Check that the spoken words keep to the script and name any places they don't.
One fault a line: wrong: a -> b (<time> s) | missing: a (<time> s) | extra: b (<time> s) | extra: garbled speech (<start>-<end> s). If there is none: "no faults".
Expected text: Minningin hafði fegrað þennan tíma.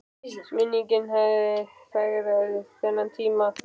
no faults